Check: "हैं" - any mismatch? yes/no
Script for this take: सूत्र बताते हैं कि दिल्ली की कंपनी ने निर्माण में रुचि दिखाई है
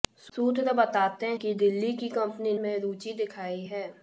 yes